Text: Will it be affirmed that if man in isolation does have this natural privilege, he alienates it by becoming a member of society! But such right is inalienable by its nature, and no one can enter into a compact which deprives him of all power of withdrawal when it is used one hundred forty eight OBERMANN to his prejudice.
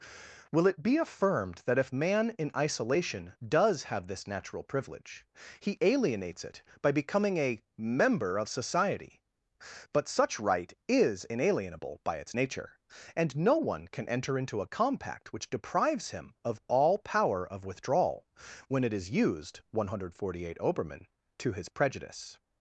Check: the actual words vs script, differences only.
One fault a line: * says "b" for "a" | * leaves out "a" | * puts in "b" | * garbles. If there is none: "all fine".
all fine